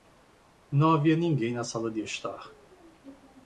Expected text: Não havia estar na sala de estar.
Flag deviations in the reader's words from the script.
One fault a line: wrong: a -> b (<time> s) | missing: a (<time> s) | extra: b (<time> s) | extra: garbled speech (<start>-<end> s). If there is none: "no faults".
wrong: estar -> ninguém (1.1 s)